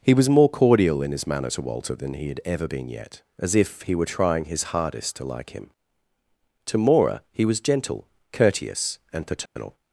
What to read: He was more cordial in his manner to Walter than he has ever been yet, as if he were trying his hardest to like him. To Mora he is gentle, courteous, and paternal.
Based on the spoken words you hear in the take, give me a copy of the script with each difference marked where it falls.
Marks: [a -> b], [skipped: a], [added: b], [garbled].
He was more cordial in his manner to Walter than he [has -> had] ever been yet, as if he were trying his hardest to like him. To Mora he [is -> was] gentle, courteous, and paternal.